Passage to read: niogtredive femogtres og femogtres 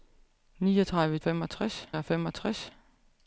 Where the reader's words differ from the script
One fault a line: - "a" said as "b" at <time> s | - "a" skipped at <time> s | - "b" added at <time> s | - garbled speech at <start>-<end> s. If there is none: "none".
none